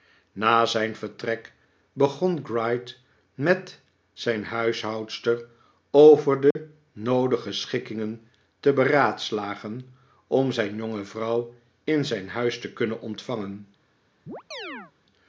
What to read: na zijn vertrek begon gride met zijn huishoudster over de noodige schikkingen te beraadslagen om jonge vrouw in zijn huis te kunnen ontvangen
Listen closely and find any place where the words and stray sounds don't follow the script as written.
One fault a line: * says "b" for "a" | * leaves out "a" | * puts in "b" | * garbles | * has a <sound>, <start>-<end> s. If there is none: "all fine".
* has a dropout, 6.5-6.6 s
* puts in "zijn"
* has a chirp, 14.3-14.9 s